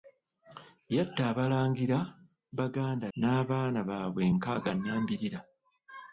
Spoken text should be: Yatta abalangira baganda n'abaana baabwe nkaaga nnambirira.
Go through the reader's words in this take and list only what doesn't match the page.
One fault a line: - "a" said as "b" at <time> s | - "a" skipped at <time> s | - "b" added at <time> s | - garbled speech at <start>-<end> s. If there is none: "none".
none